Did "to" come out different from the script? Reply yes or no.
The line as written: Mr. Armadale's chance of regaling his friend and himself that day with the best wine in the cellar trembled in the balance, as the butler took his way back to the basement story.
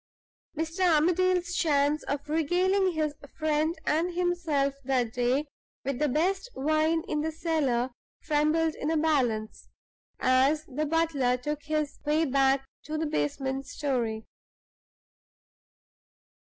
no